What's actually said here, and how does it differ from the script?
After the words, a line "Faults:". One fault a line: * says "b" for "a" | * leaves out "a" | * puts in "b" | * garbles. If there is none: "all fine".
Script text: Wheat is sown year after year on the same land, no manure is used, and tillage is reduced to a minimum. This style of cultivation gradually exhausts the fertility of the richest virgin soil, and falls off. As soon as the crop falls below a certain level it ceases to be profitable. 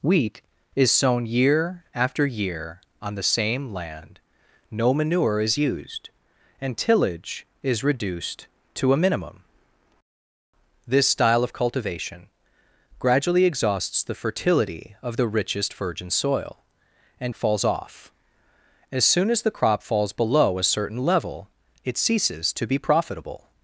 Wheat is sown year after year on the same land, no manure is used, and tillage is reduced to a minimum. This style of cultivation gradually exhausts the fertility of the richest virgin soil, and falls off. As soon as the crop falls below a certain level it ceases to be profitable.
Faults:
all fine